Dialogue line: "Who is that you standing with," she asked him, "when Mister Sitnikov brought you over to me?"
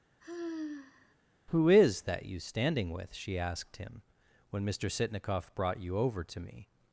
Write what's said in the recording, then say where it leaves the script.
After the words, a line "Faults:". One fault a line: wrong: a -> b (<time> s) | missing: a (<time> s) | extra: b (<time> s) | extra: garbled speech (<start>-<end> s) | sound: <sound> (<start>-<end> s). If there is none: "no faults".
"Who is that you standing with," she asked him, "when Mister Sitnikov brought you over to me?"
Faults:
sound: sigh (0.2-1.1 s)